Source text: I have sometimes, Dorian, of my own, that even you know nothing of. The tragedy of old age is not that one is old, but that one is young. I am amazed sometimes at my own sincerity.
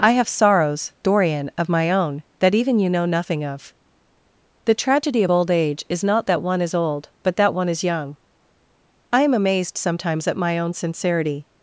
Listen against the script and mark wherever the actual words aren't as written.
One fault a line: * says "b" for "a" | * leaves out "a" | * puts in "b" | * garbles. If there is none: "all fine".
* says "sorrows" for "sometimes"